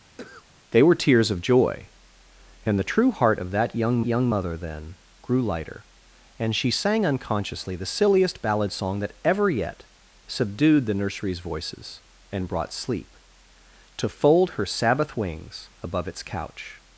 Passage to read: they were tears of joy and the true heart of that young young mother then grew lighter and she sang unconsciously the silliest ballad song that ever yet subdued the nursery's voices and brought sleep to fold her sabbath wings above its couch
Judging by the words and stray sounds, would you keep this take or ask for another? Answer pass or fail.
fail